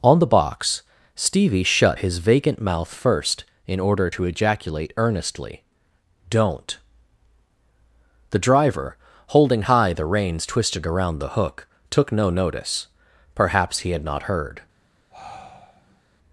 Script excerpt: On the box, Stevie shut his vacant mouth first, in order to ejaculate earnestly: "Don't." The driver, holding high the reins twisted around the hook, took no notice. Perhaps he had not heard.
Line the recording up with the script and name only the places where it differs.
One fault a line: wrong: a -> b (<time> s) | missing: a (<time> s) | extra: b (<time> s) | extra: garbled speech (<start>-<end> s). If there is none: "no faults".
no faults